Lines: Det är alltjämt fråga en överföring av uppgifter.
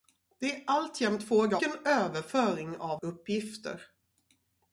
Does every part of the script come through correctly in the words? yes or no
yes